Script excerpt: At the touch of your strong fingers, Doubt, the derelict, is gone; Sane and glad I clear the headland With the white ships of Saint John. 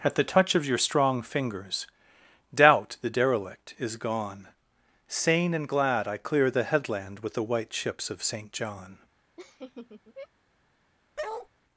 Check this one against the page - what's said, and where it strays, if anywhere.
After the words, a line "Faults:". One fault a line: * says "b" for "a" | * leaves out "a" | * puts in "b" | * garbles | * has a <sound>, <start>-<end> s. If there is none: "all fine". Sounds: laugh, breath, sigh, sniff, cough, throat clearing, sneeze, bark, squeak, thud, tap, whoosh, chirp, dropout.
At the touch of your strong fingers, Doubt, the derelict, is gone; Sane and glad I clear the headland With the white ships of Saint John.
Faults:
* has a laugh, 9.4-10.3 s
* has a bark, 11.2-11.5 s